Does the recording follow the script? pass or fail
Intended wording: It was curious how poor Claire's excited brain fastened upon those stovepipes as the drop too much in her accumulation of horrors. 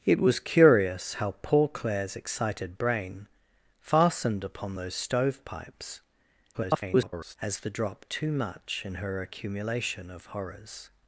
fail